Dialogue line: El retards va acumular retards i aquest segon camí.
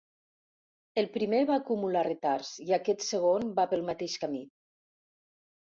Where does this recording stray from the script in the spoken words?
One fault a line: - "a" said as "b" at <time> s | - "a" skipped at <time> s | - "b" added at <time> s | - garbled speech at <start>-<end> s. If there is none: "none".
- "retards" said as "primer" at 1.2 s
- "va pel mateix" added at 3.6 s